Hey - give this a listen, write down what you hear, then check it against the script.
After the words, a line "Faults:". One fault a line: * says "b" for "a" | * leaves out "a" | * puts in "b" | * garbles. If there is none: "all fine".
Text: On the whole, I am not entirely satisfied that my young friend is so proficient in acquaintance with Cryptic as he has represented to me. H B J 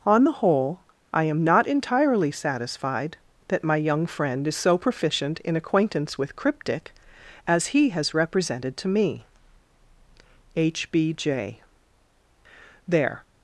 On the whole, I am not entirely satisfied that my young friend is so proficient in acquaintance with Cryptic as he has represented to me. H B J There
Faults:
* puts in "There"